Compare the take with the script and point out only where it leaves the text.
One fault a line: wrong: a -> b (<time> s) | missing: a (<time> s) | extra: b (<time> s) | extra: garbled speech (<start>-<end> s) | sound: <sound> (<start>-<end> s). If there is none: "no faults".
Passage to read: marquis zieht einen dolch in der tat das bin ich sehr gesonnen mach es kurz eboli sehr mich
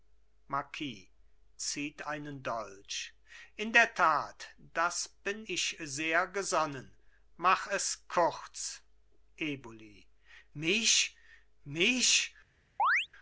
wrong: sehr -> mich (10.5 s)
sound: chirp (12.8-13.1 s)